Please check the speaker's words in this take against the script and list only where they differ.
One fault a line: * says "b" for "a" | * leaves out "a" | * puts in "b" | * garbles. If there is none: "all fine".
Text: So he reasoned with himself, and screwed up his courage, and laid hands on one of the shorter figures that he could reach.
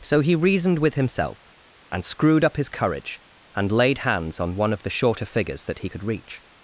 all fine